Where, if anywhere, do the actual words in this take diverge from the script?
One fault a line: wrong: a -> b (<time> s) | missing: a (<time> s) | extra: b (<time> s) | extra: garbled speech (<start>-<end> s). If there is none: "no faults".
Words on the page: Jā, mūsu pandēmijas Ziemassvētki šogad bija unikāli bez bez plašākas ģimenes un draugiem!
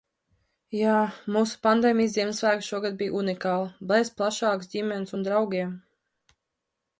missing: bez (4.1 s)